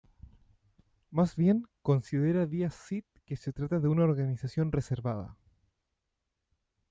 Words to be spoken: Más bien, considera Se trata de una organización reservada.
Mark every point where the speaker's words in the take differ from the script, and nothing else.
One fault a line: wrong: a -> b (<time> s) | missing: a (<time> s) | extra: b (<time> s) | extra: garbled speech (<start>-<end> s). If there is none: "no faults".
extra: Díaz Cid que (2.5 s)